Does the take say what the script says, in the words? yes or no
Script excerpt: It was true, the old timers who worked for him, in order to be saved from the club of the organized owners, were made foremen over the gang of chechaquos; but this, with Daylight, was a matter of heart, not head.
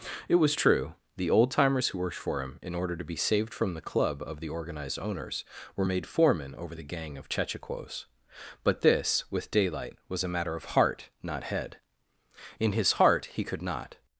no